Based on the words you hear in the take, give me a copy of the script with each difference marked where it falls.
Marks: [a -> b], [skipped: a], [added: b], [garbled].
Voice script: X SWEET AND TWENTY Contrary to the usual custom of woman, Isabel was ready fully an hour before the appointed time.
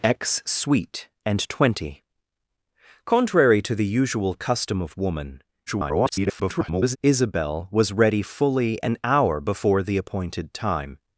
X SWEET AND TWENTY Contrary to the usual custom of woman, [garbled] Isabel was ready fully an hour before the appointed time.